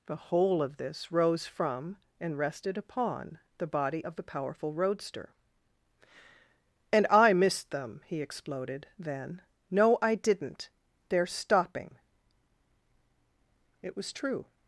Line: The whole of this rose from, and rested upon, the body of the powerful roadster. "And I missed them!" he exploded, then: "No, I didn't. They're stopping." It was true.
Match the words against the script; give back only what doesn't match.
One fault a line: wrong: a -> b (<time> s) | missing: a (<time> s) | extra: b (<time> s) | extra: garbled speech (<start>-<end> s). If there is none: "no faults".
no faults